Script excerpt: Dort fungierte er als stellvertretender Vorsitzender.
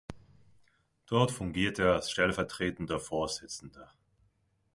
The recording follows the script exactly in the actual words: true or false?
true